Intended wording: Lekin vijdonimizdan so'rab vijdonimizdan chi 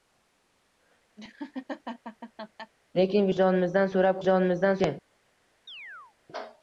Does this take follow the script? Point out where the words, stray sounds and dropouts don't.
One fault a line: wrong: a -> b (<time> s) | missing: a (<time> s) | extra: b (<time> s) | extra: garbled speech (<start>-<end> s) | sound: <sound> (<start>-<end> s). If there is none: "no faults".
sound: laugh (1.2-2.7 s)
sound: chirp (5.7-6.2 s)